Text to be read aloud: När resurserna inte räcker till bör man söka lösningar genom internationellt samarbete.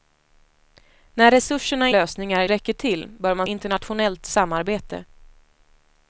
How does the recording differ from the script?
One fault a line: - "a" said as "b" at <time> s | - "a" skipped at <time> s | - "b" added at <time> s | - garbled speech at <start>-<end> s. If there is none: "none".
- "inte" said as "lösningar" at 1.9 s
- "söka lösningar genom" skipped at 3.5 s